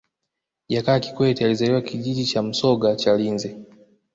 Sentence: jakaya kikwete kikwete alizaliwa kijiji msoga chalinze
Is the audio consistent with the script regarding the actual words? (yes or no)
no